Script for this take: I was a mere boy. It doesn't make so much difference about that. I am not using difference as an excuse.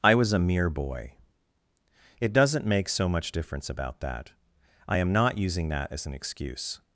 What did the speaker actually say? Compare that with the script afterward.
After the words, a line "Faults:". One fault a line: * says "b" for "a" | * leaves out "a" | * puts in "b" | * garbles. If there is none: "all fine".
I was a mere boy. It doesn't make so much difference about that. I am not using that as an excuse.
Faults:
* says "that" for "difference"